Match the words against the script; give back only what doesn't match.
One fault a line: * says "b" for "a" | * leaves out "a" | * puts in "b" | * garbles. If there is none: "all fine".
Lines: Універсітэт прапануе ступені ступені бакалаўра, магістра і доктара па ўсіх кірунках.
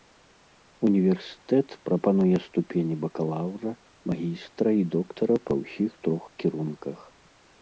* leaves out "ступені"
* puts in "трох"